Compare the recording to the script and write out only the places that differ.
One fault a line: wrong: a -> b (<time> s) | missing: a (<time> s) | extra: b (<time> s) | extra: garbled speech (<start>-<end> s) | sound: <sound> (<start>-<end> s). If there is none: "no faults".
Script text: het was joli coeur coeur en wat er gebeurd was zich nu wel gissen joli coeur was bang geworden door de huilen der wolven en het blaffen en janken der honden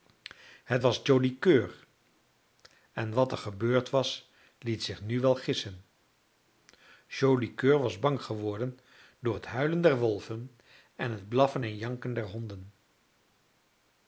missing: coeur (1.9 s)
extra: liet (4.6 s)
wrong: de -> het (9.3 s)